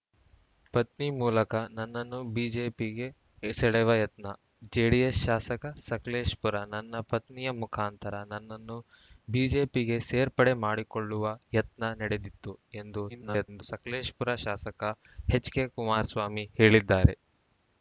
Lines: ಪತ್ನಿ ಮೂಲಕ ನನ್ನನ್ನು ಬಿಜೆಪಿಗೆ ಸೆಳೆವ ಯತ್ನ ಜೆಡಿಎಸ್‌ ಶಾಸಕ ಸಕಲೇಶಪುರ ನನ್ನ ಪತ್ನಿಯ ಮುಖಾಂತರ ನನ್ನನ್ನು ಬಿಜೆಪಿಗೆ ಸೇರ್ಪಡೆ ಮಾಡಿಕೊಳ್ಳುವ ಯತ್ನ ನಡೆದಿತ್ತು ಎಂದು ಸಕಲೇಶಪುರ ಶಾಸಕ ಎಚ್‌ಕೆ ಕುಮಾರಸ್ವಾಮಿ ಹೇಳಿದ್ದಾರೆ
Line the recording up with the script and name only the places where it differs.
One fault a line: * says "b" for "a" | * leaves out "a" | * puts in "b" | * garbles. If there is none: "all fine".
* garbles